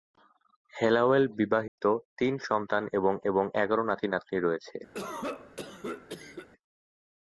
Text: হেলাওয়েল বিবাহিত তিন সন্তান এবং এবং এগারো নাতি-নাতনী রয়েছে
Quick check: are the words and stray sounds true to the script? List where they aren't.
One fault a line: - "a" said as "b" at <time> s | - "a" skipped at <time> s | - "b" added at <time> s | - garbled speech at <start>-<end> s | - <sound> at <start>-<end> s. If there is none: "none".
- dropout at 1.7-1.8 s
- cough at 4.9-6.5 s